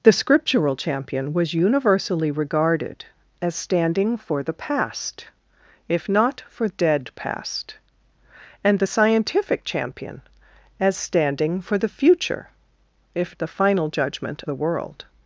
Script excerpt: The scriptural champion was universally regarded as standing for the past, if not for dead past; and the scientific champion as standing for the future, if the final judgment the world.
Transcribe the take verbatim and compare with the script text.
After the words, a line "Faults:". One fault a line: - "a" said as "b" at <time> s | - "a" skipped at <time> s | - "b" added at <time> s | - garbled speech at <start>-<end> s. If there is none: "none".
The scriptural champion was universally regarded as standing for the past, if not for dead past; and the scientific champion as standing for the future, if the final judgment the world.
Faults:
none